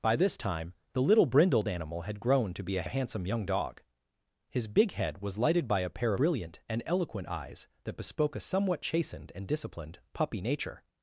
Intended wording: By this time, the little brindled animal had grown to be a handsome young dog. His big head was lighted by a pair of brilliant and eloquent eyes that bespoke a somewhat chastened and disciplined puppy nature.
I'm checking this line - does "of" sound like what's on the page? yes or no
no